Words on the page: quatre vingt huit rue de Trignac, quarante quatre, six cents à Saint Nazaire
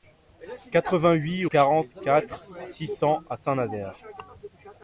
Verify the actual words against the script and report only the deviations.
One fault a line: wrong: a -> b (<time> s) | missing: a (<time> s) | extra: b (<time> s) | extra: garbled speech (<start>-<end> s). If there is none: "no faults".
missing: rue de Trignac (1.4 s)